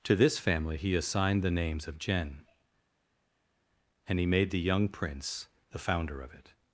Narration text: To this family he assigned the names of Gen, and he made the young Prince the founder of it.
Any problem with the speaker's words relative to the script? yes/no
no